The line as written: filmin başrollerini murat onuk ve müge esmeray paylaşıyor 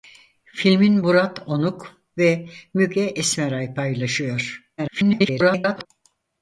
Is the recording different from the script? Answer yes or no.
yes